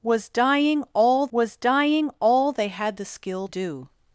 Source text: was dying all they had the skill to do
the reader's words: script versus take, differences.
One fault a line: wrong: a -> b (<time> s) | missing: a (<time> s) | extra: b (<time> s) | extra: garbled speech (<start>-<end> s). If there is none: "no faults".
extra: was dying all (1.3 s)
missing: to (3.5 s)